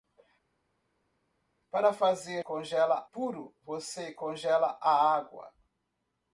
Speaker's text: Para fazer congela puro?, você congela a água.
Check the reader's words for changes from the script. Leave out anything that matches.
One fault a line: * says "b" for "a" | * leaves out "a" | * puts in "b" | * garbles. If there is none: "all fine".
all fine